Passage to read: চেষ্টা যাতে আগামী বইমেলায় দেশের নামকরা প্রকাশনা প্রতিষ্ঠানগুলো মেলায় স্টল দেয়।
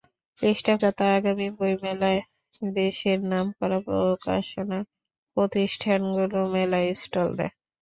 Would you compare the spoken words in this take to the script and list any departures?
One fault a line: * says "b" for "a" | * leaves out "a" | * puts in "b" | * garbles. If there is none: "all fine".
all fine